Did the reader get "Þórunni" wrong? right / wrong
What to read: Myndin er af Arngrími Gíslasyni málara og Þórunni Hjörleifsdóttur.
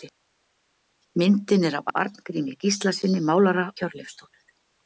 wrong